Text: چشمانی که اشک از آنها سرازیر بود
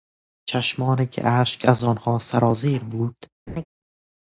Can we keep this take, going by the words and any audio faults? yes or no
no